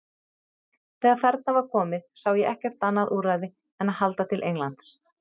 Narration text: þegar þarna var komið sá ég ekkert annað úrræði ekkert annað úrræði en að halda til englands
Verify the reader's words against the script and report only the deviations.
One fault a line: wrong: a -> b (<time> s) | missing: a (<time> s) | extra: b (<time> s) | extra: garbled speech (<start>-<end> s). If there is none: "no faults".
missing: ekkert annað úrræði (3.5 s)